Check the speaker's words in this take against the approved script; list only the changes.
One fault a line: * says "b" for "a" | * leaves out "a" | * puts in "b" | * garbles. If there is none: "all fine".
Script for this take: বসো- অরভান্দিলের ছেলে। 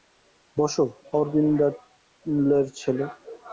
all fine